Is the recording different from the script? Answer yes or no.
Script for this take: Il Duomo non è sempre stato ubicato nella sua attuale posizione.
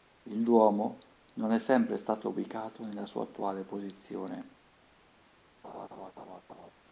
no